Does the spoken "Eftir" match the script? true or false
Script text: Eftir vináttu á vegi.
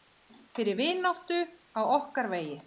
false